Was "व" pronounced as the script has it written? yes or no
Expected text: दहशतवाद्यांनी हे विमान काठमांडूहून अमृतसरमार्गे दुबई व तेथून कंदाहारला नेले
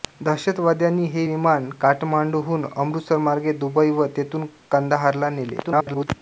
yes